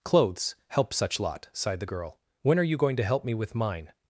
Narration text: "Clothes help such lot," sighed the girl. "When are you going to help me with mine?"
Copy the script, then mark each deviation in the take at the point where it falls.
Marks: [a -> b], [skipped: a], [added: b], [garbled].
"Clothes help such lot," sighed the girl. "When are you going to help me with mine?"